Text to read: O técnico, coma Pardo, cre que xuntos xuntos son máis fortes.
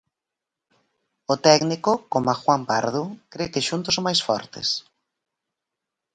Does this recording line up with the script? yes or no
no